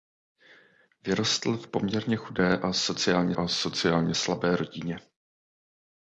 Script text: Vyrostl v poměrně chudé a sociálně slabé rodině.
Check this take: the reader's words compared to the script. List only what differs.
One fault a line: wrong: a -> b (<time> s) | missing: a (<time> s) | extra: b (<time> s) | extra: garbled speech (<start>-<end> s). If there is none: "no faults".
extra: a sociálně (3.3 s)